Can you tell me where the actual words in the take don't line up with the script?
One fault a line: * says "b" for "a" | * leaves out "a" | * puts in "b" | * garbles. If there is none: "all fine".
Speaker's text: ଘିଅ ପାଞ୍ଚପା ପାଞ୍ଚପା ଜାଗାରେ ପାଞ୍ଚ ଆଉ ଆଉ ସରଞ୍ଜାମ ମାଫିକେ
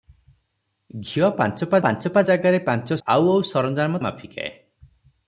all fine